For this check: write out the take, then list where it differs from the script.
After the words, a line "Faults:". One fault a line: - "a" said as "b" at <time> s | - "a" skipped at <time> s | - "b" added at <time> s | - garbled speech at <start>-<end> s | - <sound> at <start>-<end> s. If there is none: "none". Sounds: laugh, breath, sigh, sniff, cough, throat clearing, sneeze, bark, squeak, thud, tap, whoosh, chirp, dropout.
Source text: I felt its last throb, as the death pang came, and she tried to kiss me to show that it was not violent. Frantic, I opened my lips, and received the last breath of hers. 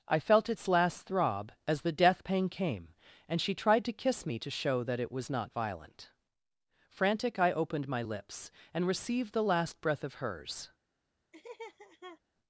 I felt its last throb, as the death pang came, and she tried to kiss me to show that it was not violent. Frantic, I opened my lips, and received the last breath of hers.
Faults:
- laugh at 11.3-12.2 s